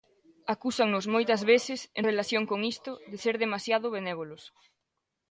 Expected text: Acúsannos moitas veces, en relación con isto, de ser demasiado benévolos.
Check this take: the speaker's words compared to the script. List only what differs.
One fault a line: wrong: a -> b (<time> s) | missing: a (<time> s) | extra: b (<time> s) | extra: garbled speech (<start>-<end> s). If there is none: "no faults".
no faults